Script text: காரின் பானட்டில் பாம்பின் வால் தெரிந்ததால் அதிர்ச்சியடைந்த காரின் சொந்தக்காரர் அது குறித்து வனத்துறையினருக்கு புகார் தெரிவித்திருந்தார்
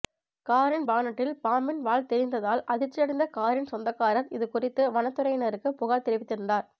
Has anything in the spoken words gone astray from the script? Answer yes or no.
yes